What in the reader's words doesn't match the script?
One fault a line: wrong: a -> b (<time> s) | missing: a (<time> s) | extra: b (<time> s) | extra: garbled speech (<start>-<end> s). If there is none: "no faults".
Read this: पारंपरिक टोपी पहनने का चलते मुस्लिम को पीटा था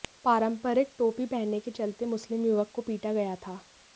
wrong: का -> के (1.6 s)
extra: युवक (2.5 s)
extra: गया (3.1 s)